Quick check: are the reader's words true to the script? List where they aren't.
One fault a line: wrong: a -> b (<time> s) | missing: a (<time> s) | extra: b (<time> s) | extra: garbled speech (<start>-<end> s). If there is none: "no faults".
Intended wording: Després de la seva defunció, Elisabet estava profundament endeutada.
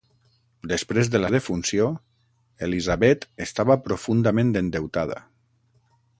missing: seva (1.3 s)